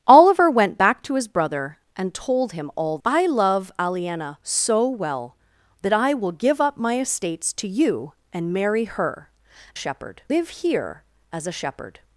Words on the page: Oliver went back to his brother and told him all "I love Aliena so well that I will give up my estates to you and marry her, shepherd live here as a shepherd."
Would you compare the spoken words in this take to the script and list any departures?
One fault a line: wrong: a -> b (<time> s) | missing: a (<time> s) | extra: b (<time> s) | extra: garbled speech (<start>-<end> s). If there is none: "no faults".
no faults